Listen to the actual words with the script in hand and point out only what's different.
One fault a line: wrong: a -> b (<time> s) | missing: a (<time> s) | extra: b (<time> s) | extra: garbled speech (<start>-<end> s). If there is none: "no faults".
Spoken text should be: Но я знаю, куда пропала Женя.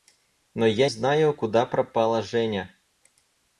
no faults